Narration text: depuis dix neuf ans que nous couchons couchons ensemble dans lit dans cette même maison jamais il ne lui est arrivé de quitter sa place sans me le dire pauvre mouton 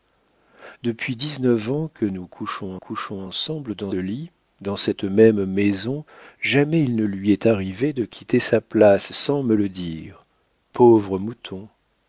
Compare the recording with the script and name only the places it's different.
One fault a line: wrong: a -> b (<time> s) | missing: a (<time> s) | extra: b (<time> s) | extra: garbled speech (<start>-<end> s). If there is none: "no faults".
no faults